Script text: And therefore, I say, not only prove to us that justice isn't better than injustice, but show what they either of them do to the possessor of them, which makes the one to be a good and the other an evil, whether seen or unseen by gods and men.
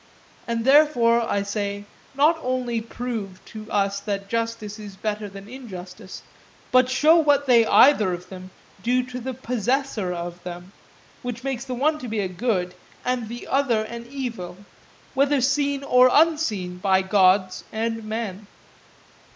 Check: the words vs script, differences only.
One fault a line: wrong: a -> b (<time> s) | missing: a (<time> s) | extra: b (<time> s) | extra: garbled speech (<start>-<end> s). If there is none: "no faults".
wrong: isn't -> is (4.8 s)